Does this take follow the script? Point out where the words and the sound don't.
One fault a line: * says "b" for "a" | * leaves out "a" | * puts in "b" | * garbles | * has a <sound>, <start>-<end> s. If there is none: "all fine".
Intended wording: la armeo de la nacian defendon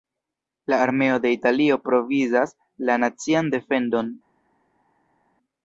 * puts in "italio provizas"